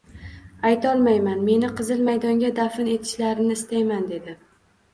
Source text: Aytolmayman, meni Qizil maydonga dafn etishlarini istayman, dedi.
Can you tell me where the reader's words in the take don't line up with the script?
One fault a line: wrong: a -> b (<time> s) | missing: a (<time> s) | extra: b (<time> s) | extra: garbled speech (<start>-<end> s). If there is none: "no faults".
no faults